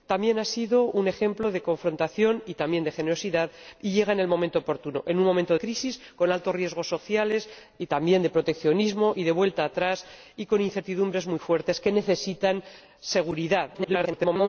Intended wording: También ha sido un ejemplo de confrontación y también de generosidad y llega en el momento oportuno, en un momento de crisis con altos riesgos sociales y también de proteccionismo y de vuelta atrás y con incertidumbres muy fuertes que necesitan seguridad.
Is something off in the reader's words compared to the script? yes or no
yes